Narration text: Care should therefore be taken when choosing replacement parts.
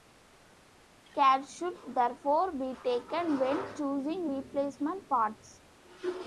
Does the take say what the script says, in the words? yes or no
yes